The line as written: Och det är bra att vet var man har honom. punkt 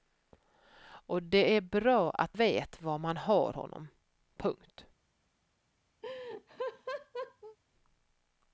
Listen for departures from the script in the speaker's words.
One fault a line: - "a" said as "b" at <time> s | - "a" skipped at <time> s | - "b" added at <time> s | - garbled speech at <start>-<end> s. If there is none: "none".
none